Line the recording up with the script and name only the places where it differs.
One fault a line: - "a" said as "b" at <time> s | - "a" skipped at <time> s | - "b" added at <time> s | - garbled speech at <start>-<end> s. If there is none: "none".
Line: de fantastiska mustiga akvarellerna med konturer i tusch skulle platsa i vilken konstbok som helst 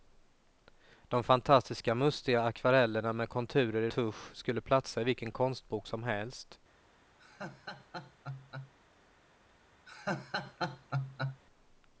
none